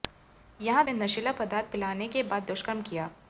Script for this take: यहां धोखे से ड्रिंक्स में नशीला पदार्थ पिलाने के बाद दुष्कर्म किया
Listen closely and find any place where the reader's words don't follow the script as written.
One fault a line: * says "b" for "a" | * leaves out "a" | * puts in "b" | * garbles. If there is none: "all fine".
* leaves out "धोखे से ड्रिंक्स"